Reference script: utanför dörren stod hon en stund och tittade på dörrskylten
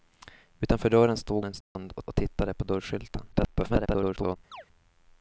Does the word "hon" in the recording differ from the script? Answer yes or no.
yes